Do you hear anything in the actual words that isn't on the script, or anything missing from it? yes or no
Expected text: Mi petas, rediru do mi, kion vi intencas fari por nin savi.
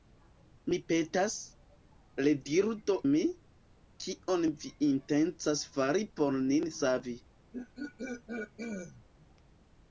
no